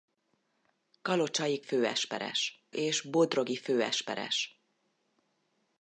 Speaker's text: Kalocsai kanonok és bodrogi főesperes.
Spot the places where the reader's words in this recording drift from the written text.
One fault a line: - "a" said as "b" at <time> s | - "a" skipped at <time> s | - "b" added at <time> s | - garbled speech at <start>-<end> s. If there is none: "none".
- "kanonok" said as "főesperes" at 1.6 s